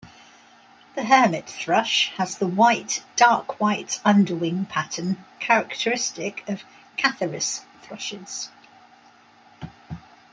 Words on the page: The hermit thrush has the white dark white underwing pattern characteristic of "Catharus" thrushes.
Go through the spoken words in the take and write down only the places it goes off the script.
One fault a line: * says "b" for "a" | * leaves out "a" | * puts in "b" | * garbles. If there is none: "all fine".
all fine